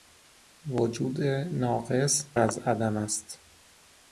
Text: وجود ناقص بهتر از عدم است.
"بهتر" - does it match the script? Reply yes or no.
no